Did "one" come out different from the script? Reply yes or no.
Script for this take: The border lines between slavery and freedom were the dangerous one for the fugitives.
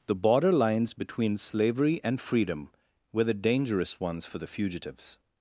yes